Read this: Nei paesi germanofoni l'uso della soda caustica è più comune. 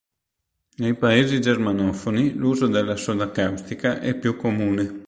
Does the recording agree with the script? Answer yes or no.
yes